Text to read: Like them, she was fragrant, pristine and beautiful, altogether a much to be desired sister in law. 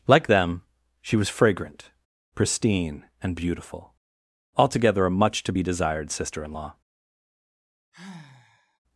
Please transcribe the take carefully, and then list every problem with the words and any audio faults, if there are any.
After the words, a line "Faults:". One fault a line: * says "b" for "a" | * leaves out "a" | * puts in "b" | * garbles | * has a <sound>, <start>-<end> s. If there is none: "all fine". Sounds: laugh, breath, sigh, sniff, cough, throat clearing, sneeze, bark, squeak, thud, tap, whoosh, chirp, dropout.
Like them, she was fragrant, pristine and beautiful, altogether a much to be desired sister in law.
Faults:
* has a sigh, 7.9-8.8 s